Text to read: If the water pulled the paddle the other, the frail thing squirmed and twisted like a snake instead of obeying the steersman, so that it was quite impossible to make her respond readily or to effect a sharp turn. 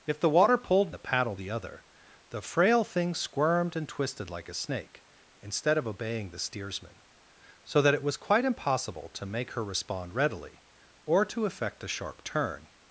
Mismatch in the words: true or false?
false